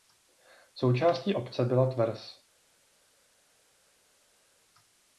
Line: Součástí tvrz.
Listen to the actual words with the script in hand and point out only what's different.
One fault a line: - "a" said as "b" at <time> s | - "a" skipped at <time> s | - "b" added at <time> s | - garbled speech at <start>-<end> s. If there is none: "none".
- "obce byla" added at 1.3 s